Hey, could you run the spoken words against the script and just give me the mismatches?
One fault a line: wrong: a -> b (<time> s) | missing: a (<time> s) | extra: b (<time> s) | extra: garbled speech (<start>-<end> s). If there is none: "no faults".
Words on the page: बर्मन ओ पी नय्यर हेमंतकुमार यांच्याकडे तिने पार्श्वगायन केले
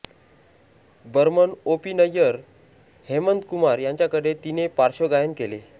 no faults